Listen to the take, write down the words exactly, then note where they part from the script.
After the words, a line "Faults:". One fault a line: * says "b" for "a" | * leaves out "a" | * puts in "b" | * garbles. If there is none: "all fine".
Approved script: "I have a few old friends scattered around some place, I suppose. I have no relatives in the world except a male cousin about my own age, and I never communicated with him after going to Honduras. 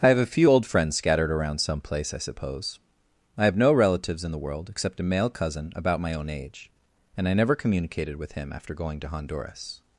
"I have a few old friends scattered around some place, I suppose. I have no relatives in the world except a male cousin about my own age, and I never communicated with him after going to Honduras.
Faults:
all fine